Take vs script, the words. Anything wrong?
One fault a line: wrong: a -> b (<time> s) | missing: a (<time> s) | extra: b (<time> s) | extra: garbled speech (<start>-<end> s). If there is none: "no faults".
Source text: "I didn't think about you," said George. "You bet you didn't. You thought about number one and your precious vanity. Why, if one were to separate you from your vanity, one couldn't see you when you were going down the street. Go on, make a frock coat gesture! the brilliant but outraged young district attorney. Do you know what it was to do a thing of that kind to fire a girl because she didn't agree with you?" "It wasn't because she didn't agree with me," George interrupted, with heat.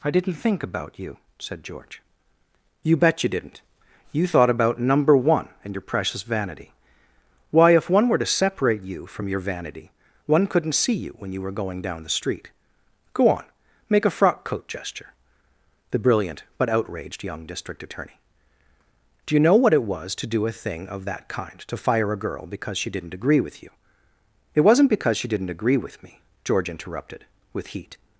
no faults